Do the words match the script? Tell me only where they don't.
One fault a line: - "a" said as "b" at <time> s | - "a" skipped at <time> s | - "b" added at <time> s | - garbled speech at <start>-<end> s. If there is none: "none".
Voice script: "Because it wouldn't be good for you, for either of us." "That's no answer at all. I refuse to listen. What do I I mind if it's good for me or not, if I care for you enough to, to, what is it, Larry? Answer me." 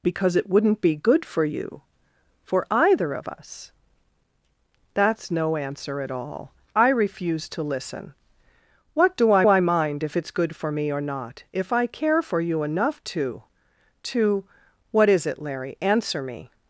none